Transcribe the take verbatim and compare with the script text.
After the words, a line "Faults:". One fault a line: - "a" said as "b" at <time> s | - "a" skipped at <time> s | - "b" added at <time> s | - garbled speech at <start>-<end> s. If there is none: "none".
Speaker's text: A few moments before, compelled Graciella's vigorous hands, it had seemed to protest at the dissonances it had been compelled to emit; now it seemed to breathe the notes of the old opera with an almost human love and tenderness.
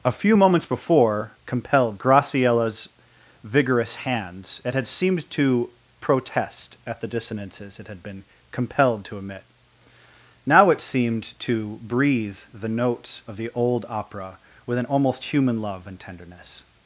A few moments before, compelled Graciella's vigorous hands, it had seemed to protest at the dissonances it had been compelled to emit; now it seemed to breathe the notes of the old opera with an almost human love and tenderness.
Faults:
none